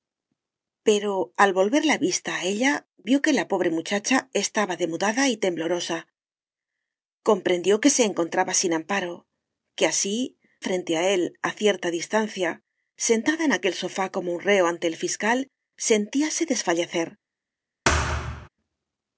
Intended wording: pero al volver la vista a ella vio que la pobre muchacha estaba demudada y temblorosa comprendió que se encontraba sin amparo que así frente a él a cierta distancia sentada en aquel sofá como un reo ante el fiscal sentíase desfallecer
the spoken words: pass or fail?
pass